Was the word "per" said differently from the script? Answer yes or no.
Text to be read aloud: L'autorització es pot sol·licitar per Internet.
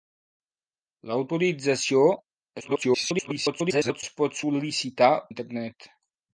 yes